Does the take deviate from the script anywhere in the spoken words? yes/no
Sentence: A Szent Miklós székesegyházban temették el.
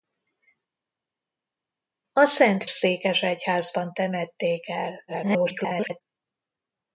yes